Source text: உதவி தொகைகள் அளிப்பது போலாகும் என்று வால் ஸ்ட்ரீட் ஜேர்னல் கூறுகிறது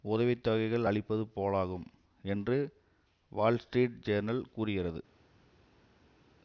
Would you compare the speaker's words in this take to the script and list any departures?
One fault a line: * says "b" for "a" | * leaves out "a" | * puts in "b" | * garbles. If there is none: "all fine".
all fine